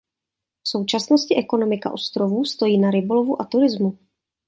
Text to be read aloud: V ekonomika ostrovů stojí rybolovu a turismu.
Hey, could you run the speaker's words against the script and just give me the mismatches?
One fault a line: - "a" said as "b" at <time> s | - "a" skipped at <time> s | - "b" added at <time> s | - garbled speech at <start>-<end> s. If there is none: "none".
- "současnosti" added at 0.7 s
- "na" added at 2.8 s